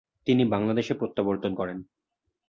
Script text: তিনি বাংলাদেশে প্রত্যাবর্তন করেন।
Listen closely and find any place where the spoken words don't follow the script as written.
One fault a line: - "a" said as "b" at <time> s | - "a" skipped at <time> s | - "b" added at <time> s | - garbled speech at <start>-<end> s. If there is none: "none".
none